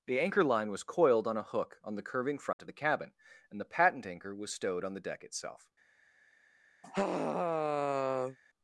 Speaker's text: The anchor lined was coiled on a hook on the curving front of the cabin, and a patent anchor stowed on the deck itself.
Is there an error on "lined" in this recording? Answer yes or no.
yes